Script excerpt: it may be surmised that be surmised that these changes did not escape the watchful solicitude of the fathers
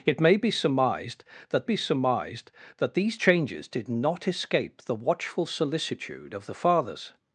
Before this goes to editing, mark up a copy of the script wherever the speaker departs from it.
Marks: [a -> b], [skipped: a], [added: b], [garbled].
it may be surmised that be surmised that these changes did not escape the watchful solicitude of the fathers